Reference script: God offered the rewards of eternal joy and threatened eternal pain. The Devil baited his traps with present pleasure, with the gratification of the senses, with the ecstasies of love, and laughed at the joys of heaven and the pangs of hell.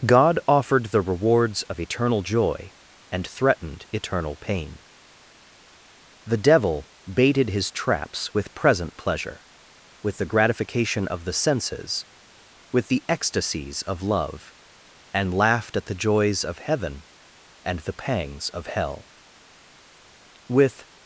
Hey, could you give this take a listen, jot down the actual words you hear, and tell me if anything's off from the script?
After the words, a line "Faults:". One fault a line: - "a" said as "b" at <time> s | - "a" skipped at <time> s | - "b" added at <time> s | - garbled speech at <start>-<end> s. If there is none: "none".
God offered the rewards of eternal joy and threatened eternal pain. The Devil baited his traps with present pleasure, with the gratification of the senses, with the ecstasies of love, and laughed at the joys of heaven and the pangs of hell. With
Faults:
- "With" added at 20.5 s